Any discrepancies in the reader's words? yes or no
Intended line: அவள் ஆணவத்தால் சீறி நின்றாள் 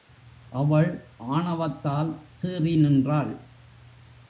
no